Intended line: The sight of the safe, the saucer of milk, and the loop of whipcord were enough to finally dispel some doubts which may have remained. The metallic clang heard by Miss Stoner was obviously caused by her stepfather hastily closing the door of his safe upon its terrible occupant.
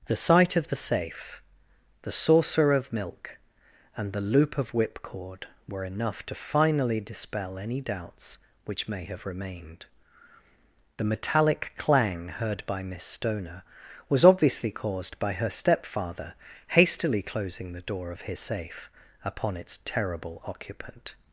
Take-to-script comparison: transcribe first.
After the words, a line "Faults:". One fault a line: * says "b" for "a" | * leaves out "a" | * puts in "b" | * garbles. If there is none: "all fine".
The sight of the safe, the saucer of milk, and the loop of whipcord were enough to finally dispel any doubts which may have remained. The metallic clang heard by Miss Stoner was obviously caused by her stepfather hastily closing the door of his safe upon its terrible occupant.
Faults:
* says "any" for "some"